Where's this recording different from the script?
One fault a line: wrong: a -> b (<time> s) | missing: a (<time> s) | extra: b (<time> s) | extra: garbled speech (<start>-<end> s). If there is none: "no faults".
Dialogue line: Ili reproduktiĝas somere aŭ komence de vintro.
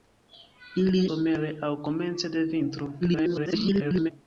missing: reproduktiĝas (1.0 s)
extra: garbled speech (3.0-4.1 s)